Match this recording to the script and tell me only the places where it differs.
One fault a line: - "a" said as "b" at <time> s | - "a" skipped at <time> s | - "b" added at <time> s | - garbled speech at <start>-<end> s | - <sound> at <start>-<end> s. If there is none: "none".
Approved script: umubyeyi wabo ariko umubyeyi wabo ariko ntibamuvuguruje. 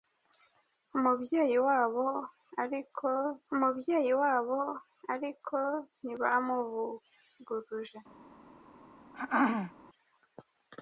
- throat clearing at 9.1-9.7 s